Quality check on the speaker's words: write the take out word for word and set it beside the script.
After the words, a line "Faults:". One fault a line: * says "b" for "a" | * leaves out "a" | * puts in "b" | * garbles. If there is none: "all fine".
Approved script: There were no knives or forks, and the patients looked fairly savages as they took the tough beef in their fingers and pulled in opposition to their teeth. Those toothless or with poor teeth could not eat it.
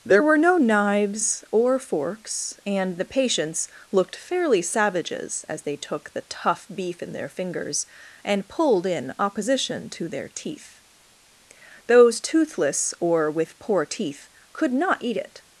There were no knives or forks, and the patients looked fairly savages as they took the tough beef in their fingers and pulled in opposition to their teeth. Those toothless or with poor teeth could not eat it.
Faults:
all fine